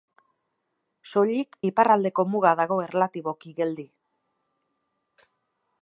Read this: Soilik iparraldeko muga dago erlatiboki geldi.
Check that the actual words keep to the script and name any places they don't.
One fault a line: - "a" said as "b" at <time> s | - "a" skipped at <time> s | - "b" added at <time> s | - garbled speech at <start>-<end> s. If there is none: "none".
none